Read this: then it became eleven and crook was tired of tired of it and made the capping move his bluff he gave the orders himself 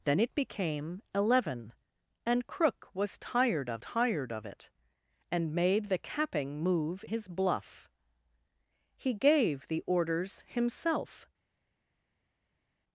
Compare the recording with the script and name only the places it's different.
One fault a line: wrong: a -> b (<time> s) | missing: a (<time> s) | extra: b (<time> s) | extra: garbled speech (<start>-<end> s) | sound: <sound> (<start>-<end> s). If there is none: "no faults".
no faults